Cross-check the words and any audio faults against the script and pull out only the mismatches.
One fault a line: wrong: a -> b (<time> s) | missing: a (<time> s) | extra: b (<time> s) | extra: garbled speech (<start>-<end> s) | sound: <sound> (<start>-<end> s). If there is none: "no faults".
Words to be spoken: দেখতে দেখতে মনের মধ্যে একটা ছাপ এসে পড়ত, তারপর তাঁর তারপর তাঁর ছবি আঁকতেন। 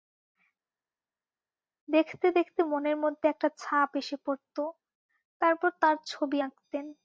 missing: তারপর তাঁর (6.0 s)